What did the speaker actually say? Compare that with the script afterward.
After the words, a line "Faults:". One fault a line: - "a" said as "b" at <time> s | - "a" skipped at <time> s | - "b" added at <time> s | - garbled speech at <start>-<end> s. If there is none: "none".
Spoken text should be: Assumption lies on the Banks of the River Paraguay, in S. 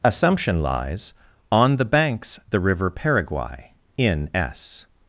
Assumption lies on the Banks the River Paraguay, in S.
Faults:
- "of" skipped at 2.4 s